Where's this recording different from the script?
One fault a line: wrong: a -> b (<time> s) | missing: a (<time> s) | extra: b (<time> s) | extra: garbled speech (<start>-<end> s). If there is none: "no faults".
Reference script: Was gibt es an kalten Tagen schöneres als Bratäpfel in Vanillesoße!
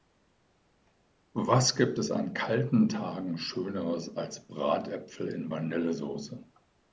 no faults